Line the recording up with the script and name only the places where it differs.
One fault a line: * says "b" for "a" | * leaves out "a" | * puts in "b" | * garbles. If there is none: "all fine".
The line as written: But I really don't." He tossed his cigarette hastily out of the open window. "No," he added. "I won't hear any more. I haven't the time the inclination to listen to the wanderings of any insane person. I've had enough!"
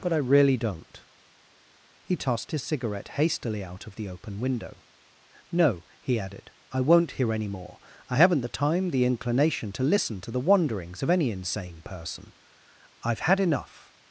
all fine